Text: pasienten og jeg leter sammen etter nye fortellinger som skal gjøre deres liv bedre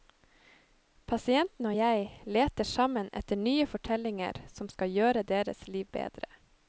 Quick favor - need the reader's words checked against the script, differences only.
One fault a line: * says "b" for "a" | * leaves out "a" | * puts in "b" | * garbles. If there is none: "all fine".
all fine